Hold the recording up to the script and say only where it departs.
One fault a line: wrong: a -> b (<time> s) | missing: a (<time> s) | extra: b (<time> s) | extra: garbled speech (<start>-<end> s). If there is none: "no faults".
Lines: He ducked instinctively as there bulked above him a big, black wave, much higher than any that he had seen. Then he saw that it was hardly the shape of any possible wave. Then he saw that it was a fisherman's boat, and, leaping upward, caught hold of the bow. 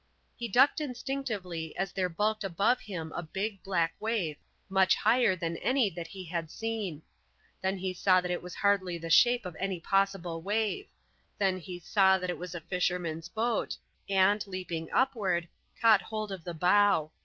no faults